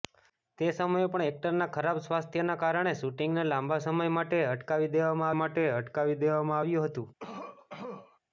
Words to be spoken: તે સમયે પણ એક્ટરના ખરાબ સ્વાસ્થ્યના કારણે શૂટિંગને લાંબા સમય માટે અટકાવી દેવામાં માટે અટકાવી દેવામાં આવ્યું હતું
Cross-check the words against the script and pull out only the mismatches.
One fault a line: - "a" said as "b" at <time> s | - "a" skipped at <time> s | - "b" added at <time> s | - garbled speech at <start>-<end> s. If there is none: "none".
none